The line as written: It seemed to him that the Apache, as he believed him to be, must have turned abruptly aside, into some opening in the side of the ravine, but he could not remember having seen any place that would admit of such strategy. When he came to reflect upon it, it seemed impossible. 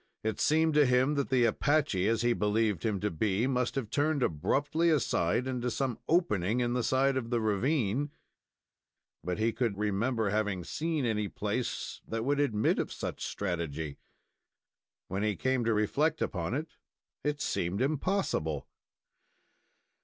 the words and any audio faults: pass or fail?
fail